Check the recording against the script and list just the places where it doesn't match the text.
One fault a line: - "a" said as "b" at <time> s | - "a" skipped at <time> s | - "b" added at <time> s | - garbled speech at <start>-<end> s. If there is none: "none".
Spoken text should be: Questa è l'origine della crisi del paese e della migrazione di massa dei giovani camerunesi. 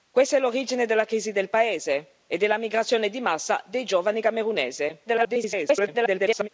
- garbled speech at 5.1-6.5 s